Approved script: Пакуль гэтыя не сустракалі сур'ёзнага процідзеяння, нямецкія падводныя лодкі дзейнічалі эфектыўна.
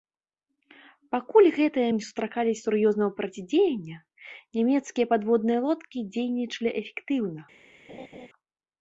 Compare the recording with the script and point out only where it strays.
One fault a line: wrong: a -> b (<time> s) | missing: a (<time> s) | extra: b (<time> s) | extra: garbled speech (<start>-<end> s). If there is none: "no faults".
no faults